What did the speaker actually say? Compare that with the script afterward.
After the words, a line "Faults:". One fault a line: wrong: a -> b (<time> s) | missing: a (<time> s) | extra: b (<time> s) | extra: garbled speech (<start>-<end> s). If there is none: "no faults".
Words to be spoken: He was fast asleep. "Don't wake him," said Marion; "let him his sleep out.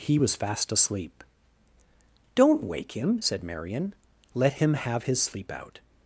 He was fast asleep. "Don't wake him," said Marion; "let him have his sleep out.
Faults:
extra: have (4.7 s)